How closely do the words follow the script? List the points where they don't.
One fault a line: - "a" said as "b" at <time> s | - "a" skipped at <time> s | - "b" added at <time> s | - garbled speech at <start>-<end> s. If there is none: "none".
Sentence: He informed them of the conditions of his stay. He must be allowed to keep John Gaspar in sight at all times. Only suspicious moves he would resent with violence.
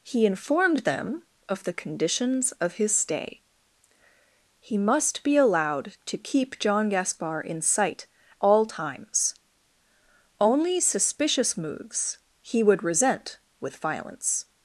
- "at" skipped at 8.1 s